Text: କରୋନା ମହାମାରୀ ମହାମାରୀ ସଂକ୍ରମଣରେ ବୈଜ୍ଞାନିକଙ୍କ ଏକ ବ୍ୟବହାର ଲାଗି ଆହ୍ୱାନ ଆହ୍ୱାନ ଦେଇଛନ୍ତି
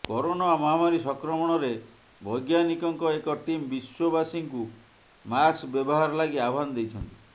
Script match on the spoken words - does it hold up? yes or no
no